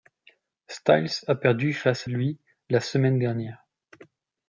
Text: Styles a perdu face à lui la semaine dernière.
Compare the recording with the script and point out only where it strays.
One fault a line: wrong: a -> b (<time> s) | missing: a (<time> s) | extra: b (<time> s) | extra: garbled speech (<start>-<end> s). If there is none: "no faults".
no faults